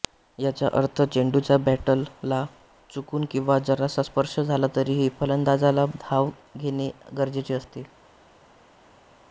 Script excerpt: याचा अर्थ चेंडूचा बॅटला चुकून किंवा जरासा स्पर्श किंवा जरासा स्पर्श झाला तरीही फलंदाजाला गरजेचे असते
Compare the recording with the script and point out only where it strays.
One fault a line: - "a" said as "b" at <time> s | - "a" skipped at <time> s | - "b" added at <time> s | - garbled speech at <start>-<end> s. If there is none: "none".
- "किंवा जरासा स्पर्श" skipped at 4.4 s
- "धाव घेणे" added at 6.0 s